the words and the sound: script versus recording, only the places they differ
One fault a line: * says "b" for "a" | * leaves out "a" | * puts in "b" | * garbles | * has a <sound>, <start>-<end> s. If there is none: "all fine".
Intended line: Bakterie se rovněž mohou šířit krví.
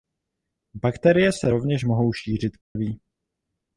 * has a dropout, 2.6-2.8 s